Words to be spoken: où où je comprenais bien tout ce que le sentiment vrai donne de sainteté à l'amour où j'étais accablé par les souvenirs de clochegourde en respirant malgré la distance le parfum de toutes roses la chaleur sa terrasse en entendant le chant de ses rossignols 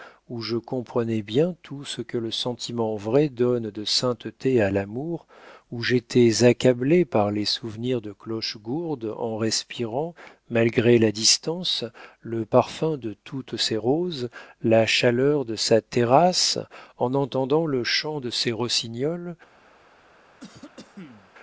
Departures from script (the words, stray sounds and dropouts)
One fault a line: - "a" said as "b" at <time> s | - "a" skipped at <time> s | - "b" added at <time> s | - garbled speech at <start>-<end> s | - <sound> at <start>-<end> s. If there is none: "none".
- "où" skipped at 0.4 s
- "ses" added at 13.6 s
- "de" added at 15.4 s
- cough at 20.4-21.3 s